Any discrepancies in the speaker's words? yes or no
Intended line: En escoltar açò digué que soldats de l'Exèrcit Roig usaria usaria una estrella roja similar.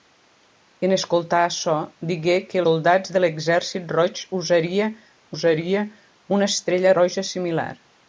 no